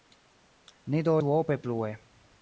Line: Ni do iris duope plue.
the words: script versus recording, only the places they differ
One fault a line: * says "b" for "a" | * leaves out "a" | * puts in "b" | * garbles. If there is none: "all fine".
* leaves out "iris"